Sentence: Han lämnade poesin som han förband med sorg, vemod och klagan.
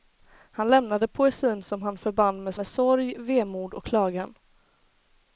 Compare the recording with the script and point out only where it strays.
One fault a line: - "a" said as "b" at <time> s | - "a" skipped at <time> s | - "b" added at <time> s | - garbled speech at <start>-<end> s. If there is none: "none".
- "med" added at 2.6 s